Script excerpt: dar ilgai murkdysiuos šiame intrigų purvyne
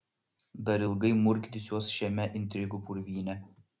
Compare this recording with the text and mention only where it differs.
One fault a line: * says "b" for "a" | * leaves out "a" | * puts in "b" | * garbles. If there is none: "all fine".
all fine